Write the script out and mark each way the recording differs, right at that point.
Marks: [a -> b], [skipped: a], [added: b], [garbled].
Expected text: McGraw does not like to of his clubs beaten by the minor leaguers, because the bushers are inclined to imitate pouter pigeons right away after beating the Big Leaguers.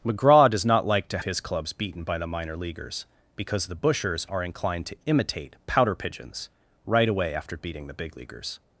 McGraw does not like to of his clubs beaten by the minor leaguers, because the bushers are inclined to imitate pouter pigeons right away after beating the Big Leaguers.